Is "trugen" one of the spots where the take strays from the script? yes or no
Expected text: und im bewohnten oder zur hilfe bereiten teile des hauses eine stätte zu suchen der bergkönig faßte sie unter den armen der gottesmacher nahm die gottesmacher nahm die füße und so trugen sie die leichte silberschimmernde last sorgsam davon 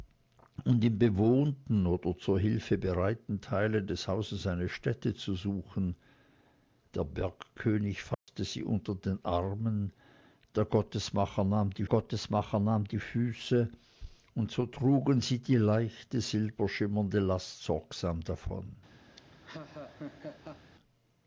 no